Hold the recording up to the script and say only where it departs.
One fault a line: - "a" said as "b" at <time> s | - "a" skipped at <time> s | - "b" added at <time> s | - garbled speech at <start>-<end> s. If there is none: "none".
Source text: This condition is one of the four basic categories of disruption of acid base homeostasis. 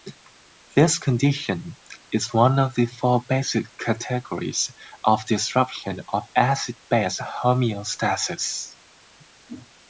none